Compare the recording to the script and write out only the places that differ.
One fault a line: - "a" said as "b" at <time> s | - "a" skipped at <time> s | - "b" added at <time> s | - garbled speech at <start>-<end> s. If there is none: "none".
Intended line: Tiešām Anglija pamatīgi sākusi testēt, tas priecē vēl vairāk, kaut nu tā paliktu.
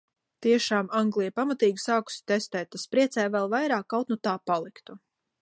none